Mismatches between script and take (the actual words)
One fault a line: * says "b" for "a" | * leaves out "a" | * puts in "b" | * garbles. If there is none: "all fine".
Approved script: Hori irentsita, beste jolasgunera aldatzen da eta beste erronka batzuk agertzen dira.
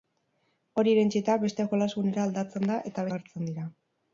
* leaves out "beste erronka batzuk"